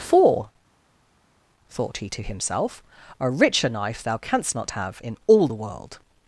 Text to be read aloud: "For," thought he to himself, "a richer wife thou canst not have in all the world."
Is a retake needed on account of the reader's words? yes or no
yes